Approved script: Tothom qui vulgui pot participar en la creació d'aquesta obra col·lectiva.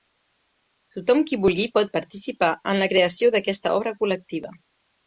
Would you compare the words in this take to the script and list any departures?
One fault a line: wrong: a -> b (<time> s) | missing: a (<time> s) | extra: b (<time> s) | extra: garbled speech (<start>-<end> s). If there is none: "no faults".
no faults